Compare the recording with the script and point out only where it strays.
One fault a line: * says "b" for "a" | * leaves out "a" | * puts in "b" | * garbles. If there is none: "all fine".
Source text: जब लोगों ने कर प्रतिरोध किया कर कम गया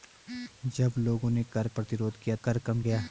all fine